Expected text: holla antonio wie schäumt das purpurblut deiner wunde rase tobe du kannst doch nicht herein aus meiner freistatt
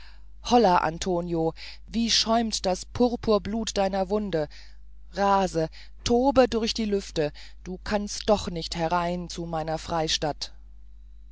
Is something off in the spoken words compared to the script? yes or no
yes